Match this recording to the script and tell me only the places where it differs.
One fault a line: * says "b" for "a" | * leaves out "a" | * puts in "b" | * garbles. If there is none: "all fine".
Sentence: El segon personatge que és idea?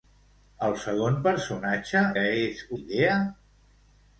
all fine